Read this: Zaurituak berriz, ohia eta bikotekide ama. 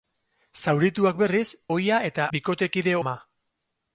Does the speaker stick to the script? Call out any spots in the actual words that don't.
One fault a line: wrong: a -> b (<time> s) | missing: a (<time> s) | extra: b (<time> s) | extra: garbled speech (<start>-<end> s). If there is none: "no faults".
no faults